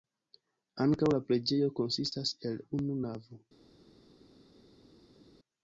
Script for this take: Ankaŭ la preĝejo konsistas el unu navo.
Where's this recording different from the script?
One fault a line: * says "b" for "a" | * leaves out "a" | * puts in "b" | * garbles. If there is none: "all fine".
all fine